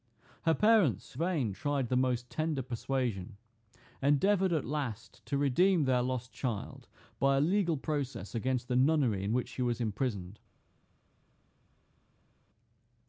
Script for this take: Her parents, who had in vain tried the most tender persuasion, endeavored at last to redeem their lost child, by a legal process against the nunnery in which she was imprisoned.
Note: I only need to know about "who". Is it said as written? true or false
false